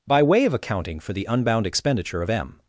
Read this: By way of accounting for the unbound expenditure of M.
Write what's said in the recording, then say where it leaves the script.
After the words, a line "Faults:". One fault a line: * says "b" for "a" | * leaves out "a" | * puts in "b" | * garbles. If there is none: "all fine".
By way of accounting for the unbound expenditure of M.
Faults:
all fine